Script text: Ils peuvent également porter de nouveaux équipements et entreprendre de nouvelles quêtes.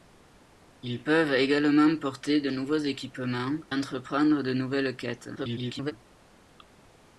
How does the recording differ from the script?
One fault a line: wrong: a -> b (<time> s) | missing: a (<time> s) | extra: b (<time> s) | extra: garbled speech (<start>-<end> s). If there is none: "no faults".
missing: et (3.6 s)
extra: garbled speech (5.4-5.9 s)